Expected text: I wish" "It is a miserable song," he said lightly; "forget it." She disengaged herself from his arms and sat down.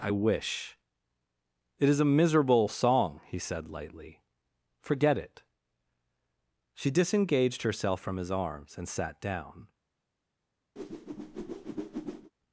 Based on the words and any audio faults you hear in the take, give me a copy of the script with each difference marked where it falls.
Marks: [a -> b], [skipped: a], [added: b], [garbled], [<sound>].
I wish" "It is a miserable song," he said lightly; "forget it." She disengaged herself from his arms and sat down. [whoosh]